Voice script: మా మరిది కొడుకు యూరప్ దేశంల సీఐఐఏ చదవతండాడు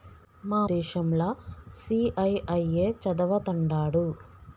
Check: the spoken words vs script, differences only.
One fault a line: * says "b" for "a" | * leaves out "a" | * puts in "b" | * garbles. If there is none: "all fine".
* leaves out "మరిది కొడుకు యూరప్"